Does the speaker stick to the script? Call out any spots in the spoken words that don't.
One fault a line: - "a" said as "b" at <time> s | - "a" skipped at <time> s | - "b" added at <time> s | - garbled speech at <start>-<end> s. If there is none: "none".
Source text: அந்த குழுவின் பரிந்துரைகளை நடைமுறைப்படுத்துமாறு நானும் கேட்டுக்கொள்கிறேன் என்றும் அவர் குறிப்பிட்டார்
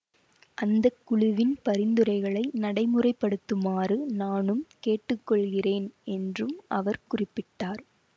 none